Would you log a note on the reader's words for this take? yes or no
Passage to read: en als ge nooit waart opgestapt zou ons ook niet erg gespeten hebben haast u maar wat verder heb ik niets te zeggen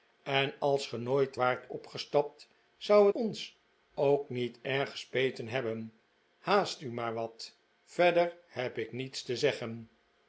no